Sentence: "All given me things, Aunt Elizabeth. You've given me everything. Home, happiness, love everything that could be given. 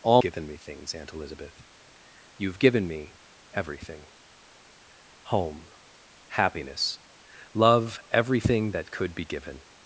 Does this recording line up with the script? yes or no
yes